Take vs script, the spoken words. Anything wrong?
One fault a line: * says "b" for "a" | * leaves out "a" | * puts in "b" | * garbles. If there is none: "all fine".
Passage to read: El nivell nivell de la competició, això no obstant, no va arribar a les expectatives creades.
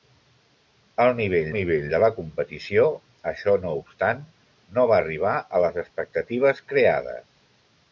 all fine